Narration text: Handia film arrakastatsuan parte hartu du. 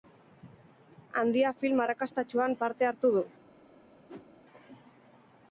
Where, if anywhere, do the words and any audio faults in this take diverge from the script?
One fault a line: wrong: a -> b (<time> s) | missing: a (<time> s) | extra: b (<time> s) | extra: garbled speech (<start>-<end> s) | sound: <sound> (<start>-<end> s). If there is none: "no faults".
sound: whoosh (4.1-4.3 s)